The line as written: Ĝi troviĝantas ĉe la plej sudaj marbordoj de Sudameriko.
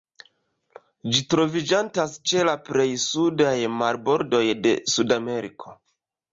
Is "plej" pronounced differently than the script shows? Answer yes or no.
no